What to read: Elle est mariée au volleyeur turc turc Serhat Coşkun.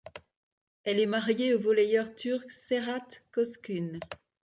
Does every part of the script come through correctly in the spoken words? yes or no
no